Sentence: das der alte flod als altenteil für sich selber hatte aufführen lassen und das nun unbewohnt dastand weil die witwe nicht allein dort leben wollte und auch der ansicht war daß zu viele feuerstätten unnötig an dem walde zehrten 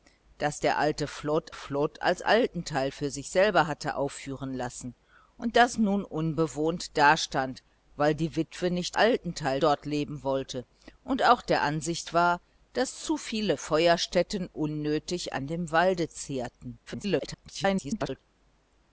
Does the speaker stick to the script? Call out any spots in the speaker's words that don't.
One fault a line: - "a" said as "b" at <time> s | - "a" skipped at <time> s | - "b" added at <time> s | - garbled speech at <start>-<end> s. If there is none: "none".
- "flod" added at 1.5 s
- "allein" said as "altenteil" at 8.9 s
- garbled speech at 16.9-18.2 s